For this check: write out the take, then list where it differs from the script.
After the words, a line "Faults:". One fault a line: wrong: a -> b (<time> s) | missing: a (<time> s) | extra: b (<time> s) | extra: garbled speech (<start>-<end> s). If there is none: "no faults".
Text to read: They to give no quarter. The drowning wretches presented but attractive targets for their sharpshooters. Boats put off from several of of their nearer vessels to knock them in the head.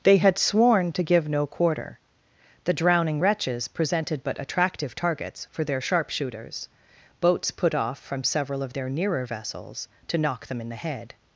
They had sworn to give no quarter. The drowning wretches presented but attractive targets for their sharpshooters. Boats put off from several of their nearer vessels to knock them in the head.
Faults:
extra: had sworn (0.2 s)
missing: of (8.7 s)